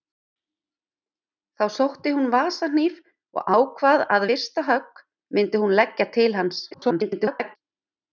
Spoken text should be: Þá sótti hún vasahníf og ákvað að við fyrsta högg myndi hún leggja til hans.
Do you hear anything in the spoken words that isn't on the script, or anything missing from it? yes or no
yes